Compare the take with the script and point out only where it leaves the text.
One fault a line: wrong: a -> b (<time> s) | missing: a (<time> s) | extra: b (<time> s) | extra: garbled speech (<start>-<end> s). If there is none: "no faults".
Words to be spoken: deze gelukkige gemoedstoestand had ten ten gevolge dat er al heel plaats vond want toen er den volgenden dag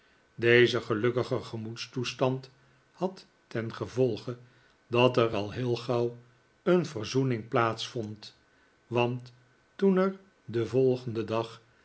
missing: ten (3.7 s)
extra: gauw een verzoening (5.7 s)